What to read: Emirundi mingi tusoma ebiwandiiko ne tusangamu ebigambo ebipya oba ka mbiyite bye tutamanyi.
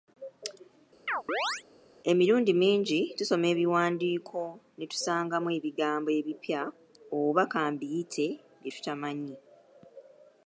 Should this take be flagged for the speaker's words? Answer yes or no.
no